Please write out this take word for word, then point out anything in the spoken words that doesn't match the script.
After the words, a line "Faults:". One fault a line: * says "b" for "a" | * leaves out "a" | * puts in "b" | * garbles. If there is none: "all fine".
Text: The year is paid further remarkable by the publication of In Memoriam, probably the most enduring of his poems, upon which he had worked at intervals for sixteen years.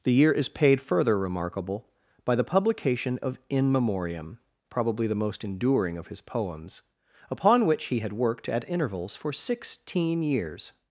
The year is paid further remarkable by the publication of In Memoriam, probably the most enduring of his poems, upon which he had worked at intervals for sixteen years.
Faults:
all fine